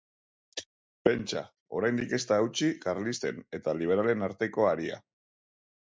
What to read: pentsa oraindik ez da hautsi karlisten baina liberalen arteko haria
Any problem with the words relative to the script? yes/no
yes